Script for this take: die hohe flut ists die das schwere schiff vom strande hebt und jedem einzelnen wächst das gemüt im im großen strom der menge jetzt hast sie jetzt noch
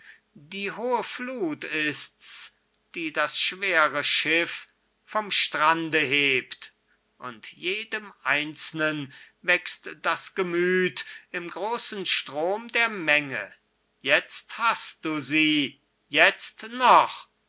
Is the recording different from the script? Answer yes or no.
yes